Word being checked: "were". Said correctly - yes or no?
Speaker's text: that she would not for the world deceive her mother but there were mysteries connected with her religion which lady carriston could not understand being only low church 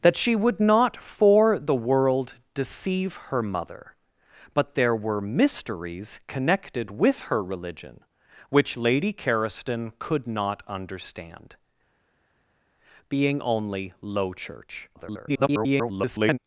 yes